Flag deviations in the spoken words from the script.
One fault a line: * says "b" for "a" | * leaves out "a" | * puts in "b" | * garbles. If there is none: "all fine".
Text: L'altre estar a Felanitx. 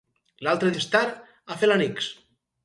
all fine